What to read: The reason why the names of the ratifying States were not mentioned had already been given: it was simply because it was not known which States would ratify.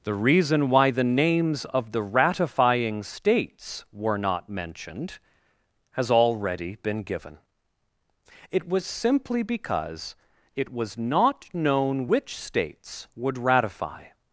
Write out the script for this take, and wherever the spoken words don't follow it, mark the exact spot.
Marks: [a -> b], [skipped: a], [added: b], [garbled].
The reason why the names of the ratifying States were not mentioned [had -> has] already been given: it was simply because it was not known which States would ratify.